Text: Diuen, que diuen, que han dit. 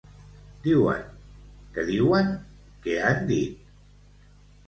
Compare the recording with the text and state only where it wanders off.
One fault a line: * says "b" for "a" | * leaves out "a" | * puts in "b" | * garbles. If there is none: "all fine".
all fine